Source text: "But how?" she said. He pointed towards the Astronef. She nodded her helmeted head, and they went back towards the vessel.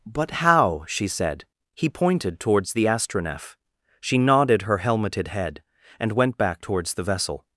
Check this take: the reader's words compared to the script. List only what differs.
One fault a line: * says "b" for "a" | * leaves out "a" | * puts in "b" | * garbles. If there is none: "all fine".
* leaves out "they"